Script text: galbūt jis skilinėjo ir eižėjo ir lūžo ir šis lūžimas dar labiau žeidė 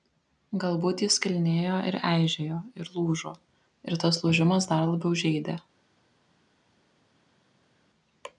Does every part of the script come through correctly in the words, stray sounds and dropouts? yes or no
no